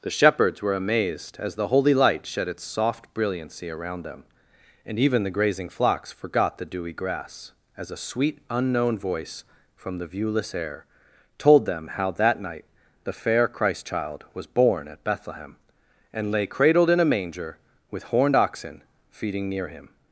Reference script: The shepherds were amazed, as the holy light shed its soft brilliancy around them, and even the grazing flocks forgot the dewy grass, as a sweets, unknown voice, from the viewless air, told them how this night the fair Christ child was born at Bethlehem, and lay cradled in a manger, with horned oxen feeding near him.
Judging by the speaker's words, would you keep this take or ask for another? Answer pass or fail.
fail